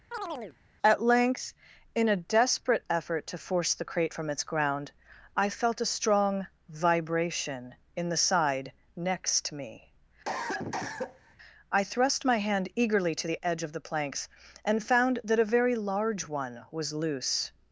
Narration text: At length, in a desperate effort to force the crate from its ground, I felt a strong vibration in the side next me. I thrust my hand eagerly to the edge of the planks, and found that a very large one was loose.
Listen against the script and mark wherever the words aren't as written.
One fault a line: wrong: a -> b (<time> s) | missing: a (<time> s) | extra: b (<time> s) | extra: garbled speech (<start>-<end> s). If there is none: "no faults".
no faults